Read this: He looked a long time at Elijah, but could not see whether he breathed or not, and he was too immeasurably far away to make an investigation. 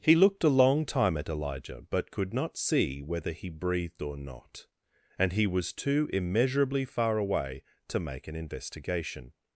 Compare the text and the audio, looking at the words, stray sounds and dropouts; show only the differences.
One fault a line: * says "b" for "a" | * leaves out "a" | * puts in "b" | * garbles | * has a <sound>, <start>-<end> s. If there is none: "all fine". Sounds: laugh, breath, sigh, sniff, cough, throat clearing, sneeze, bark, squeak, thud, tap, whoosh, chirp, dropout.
all fine